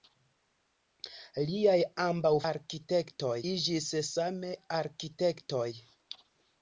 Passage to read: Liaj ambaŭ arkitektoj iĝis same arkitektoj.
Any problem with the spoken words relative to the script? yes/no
no